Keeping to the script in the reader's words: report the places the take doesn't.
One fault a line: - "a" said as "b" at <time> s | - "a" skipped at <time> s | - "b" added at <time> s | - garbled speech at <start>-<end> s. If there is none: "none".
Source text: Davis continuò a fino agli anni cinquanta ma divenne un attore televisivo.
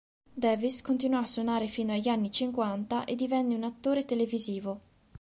- "suonare" added at 1.3 s
- "ma" said as "e" at 3.0 s